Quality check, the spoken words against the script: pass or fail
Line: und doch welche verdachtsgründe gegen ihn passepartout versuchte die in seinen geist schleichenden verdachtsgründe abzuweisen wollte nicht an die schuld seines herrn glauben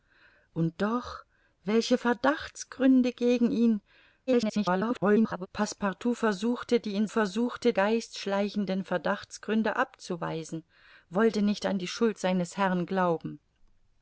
fail